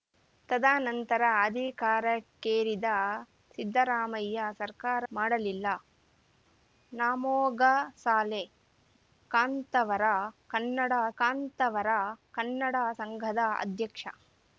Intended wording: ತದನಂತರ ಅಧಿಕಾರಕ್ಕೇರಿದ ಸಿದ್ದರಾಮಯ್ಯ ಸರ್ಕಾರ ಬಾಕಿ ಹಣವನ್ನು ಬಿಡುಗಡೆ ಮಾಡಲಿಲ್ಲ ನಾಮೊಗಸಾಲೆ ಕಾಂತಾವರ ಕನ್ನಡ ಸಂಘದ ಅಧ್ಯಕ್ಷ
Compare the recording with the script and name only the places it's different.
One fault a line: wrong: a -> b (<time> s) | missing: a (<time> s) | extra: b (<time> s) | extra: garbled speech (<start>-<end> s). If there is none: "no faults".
wrong: ಬಾಕಿ ಹಣವನ್ನು ಬಿಡುಗಡೆ ಮಾಡಲಿಲ್ಲ ನಾಮೊಗಸಾಲೆ -> ಮಾಡಲಿಲ್ಲ ನಾಮೊಗಸಾಲೆ ಕಾಂತಾವರ ಕನ್ನಡ (5.1 s)